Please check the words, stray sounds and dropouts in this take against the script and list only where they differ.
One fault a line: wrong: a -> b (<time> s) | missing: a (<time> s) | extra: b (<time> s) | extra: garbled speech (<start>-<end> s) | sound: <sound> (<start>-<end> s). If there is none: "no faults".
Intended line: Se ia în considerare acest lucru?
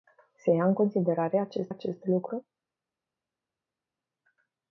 extra: acest (1.7 s)